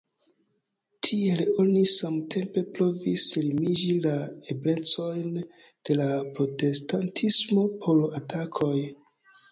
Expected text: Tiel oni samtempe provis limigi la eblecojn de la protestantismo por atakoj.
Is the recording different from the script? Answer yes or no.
no